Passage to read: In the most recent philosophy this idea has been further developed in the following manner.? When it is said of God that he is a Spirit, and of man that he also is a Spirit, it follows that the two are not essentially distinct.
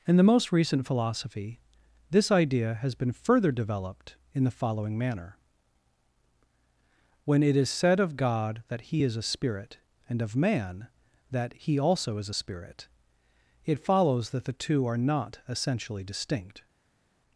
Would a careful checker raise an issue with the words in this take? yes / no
no